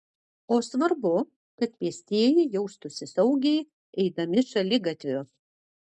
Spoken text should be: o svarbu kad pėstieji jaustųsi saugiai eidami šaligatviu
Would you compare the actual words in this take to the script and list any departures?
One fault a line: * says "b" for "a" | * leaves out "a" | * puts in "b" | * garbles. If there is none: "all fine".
all fine